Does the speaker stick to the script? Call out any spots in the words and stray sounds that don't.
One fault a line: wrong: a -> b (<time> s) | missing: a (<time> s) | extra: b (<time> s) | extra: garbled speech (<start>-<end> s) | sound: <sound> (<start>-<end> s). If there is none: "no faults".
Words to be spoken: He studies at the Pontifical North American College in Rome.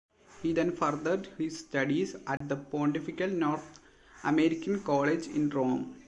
extra: then furthered his (0.5 s)
sound: dropout (2.4-2.4 s)